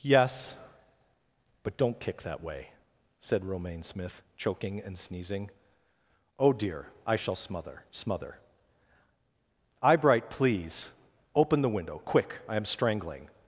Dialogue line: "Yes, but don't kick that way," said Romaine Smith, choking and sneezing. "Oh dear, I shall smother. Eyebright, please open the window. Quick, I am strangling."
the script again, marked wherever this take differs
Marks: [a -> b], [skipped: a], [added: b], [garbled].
"Yes, but don't kick that way," said Romaine Smith, choking and sneezing. "Oh dear, I shall smother. [added: smother] Eyebright, please open the window. Quick, I am strangling."